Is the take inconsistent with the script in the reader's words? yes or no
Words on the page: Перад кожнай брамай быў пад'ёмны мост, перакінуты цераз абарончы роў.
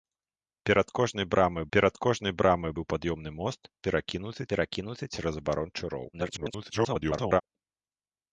yes